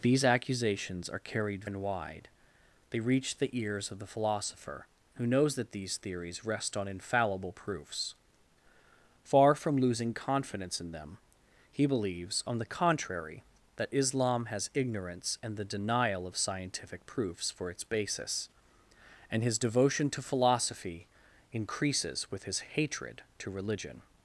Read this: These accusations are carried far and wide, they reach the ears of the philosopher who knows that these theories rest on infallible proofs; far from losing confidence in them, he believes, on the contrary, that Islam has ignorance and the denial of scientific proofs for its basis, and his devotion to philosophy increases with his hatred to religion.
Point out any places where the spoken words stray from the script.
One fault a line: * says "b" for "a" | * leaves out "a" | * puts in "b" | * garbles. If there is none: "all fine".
* leaves out "far"